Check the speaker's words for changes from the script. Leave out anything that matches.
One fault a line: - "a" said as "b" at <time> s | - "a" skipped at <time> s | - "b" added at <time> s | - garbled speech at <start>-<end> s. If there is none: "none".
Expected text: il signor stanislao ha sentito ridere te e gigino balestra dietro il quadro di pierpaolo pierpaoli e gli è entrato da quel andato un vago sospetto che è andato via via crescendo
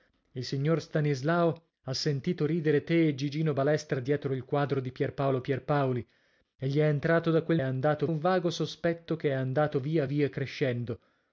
none